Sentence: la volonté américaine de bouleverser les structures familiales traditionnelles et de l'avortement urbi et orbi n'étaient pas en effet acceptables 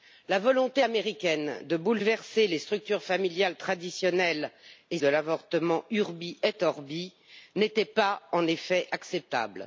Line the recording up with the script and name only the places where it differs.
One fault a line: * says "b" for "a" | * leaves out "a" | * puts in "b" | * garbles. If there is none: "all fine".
all fine